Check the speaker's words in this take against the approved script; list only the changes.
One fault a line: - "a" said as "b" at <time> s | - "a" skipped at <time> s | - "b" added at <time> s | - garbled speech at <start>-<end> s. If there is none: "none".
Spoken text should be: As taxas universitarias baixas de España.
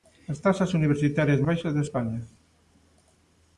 none